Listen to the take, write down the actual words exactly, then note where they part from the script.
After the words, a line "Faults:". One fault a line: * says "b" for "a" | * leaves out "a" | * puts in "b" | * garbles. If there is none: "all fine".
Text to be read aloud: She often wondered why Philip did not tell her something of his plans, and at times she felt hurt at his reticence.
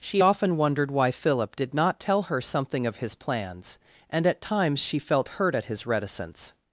She often wondered why Philip did not tell her something of his plans, and at times she felt hurt at his reticence.
Faults:
all fine